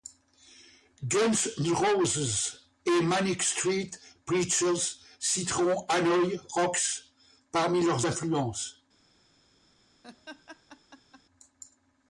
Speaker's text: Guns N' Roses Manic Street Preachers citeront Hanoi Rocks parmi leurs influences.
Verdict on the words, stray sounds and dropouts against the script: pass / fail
fail